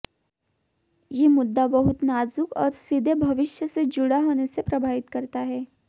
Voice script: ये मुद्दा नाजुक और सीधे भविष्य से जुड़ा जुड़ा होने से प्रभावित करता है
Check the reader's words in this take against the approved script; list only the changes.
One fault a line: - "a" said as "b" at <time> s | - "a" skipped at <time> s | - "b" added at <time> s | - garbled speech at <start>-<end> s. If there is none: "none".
- "बहुत" added at 1.7 s
- "जुड़ा" skipped at 4.2 s